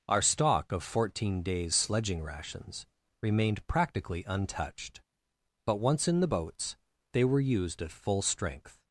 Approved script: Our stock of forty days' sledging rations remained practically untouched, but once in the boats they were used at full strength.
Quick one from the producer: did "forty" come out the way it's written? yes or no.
no